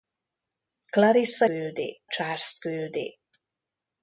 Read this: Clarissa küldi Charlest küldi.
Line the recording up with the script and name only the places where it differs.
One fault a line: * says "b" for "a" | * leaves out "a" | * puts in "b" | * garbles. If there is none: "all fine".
all fine